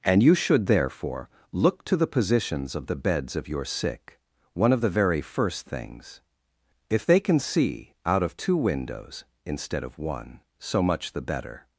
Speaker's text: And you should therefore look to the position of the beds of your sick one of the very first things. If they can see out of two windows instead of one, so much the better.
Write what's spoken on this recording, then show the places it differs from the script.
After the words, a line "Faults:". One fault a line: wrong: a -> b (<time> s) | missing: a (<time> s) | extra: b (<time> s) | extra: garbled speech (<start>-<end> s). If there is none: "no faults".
And you should therefore look to the positions of the beds of your sick one of the very first things. If they can see out of two windows instead of one, so much the better.
Faults:
wrong: position -> positions (2.1 s)